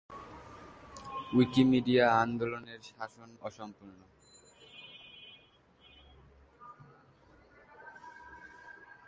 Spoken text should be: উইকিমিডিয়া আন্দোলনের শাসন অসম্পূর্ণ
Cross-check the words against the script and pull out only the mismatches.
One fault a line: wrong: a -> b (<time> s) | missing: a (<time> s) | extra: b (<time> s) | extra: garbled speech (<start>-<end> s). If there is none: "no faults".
no faults